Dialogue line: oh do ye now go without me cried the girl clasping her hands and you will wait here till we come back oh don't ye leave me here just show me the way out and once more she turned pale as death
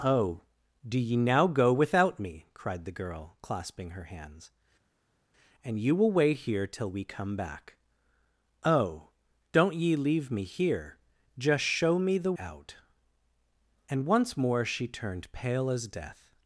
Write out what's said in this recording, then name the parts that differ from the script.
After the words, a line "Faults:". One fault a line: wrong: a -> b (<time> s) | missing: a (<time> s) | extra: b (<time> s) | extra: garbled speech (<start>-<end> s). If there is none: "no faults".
oh do ye now go without me cried the girl clasping her hands and you will wait here till we come back oh don't ye leave me here just show me the out and once more she turned pale as death
Faults:
missing: way (12.3 s)